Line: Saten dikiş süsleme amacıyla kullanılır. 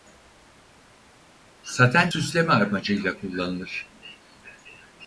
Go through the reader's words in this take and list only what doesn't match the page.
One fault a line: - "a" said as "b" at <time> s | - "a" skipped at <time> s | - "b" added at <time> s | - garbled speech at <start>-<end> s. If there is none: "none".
- "dikiş" skipped at 2.1 s